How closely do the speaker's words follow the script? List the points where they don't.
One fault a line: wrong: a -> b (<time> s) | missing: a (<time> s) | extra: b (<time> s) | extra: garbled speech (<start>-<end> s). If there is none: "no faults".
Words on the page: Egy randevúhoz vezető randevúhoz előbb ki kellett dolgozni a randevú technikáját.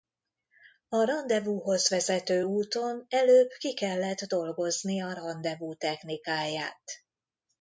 wrong: Egy -> A (0.9 s)
wrong: randevúhoz -> úton (2.4 s)